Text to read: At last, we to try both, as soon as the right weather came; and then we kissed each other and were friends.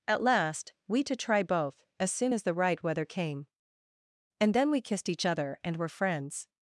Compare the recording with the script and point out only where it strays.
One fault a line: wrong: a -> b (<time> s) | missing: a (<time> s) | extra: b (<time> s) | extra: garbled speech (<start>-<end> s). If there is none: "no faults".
no faults